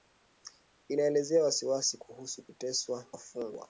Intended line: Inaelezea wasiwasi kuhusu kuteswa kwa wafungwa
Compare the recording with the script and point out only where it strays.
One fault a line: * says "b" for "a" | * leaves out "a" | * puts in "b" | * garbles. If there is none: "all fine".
* leaves out "kwa"